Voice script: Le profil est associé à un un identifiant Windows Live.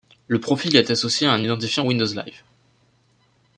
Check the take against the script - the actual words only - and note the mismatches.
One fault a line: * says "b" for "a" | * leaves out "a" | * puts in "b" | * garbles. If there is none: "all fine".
* leaves out "un"